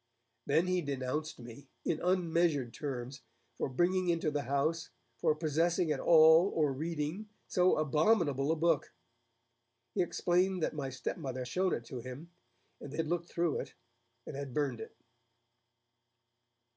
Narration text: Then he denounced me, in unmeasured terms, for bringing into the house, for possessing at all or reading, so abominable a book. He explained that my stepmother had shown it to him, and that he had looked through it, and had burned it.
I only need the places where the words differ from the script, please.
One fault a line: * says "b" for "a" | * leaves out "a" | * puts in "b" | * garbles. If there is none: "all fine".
* leaves out "had"
* leaves out "he"